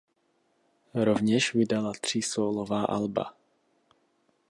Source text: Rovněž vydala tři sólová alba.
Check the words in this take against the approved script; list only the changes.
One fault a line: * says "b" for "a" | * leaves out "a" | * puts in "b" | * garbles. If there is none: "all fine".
all fine